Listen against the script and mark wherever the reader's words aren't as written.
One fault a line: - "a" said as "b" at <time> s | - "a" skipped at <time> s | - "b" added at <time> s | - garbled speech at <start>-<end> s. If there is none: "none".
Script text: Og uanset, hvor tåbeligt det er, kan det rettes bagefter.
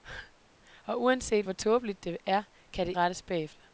none